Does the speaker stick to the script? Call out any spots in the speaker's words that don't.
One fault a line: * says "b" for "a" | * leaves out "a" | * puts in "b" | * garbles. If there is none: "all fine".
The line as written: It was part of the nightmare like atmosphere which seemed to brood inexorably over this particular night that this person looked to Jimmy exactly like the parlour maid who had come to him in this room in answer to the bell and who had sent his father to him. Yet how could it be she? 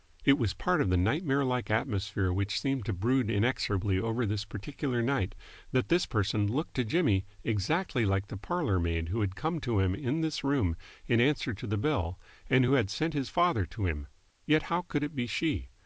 all fine